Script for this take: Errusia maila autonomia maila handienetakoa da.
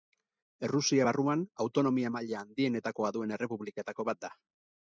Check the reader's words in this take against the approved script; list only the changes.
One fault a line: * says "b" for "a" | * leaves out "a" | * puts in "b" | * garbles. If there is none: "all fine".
* says "barruan" for "maila"
* puts in "duen errepubliketako bat"